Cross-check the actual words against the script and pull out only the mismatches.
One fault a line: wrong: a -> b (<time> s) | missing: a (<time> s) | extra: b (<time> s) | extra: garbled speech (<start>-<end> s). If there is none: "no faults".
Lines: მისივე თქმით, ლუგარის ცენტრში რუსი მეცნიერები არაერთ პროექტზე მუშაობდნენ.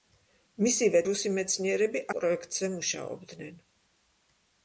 missing: თქმით ლუგარის ცენტრში (1.0 s)
missing: არაერთ (2.1 s)